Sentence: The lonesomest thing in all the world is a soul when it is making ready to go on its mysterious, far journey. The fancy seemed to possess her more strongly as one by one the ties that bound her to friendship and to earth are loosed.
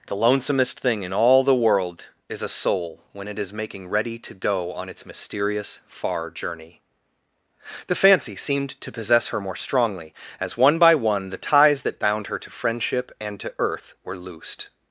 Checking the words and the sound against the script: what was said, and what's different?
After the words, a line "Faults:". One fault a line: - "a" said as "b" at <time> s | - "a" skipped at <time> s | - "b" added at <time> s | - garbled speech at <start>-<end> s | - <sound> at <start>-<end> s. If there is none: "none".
The lonesomest thing in all the world is a soul when it is making ready to go on its mysterious, far journey. The fancy seemed to possess her more strongly as one by one the ties that bound her to friendship and to earth were loosed.
Faults:
- "are" said as "were" at 14.0 s